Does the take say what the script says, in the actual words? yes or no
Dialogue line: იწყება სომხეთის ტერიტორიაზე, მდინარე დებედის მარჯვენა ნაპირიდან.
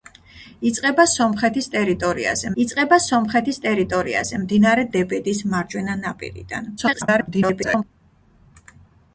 no